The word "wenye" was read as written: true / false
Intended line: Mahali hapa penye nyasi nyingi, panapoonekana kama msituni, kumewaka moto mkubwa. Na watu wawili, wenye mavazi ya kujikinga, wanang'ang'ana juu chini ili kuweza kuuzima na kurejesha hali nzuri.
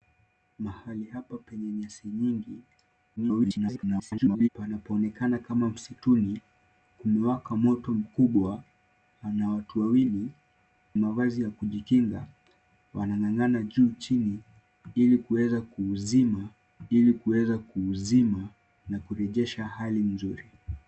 false